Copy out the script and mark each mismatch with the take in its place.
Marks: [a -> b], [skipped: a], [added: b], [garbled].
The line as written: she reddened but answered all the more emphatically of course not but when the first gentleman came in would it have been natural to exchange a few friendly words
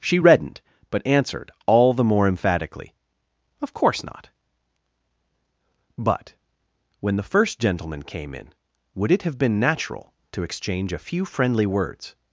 she reddened but answered all the more emphatically of course not but when the first gentleman came in would it have been natural to exchange a few friendly words